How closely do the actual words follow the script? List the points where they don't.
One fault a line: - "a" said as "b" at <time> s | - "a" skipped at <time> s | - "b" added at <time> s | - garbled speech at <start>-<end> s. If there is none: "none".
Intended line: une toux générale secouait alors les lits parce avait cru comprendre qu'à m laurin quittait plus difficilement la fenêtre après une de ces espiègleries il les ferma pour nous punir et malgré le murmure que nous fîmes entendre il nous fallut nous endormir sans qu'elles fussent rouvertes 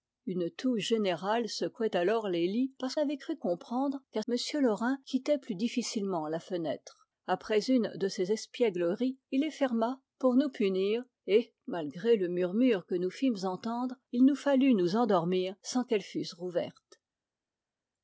none